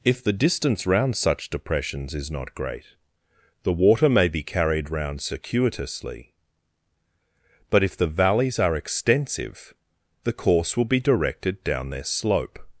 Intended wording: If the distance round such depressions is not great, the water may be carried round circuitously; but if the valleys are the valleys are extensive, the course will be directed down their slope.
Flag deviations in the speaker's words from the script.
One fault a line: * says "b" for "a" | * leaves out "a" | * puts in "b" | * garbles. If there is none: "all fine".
* leaves out "the valleys are"